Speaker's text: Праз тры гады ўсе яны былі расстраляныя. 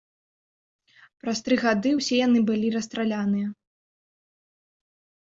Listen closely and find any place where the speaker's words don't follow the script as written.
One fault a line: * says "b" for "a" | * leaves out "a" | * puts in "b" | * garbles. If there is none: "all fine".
all fine